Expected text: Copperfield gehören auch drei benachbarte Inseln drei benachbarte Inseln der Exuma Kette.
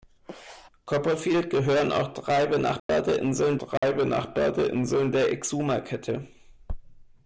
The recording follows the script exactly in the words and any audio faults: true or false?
false